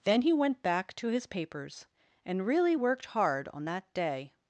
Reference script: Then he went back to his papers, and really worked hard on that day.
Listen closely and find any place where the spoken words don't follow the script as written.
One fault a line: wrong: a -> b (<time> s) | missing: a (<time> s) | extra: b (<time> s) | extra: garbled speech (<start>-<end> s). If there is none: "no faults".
no faults